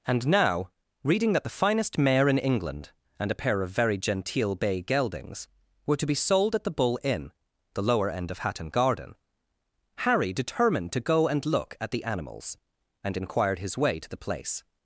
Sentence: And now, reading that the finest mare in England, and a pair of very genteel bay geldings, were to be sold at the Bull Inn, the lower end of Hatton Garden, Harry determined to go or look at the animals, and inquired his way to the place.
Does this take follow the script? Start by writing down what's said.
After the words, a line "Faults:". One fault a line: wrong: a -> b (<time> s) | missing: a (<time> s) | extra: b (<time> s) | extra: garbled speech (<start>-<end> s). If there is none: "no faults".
And now, reading that the finest mare in England, and a pair of very genteel bay geldings, were to be sold at the Bull Inn, the lower end of Hatton Garden, Harry determined to go and look at the animals, and inquired his way to the place.
Faults:
wrong: or -> and (11.3 s)